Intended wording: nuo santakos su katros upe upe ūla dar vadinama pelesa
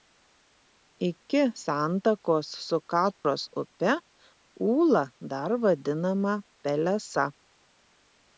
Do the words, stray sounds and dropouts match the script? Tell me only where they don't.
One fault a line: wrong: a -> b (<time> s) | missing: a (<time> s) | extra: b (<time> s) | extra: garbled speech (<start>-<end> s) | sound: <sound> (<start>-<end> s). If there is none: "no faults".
wrong: nuo -> iki (1.1 s)
sound: dropout (3.1-3.2 s)
missing: upe (3.9 s)